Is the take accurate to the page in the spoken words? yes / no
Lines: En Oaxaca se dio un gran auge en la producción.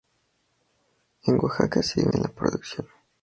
no